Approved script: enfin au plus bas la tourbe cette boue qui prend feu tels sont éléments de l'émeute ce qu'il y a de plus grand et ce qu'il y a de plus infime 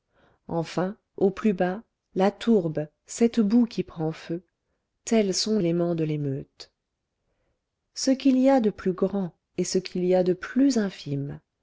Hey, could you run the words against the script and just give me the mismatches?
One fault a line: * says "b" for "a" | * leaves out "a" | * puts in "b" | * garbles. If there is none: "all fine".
all fine